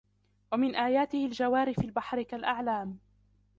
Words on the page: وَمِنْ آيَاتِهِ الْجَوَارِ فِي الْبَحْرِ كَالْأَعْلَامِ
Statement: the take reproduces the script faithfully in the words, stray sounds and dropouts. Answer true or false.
true